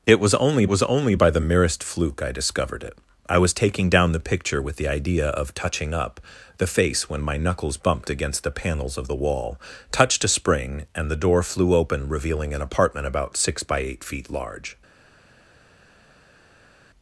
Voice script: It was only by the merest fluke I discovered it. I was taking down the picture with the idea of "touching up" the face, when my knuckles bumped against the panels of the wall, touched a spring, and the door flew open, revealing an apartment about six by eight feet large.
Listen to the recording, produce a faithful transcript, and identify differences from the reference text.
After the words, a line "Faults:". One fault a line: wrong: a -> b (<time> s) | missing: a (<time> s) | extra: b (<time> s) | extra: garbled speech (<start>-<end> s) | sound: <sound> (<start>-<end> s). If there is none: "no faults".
It was only was only by the merest fluke I discovered it. I was taking down the picture with the idea of "touching up" the face, when my knuckles bumped against the panels of the wall, touched a spring, and the door flew open, revealing an apartment about six by eight feet large.
Faults:
extra: was only (0.7 s)